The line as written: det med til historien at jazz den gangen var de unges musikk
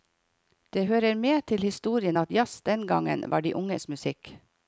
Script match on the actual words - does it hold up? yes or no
no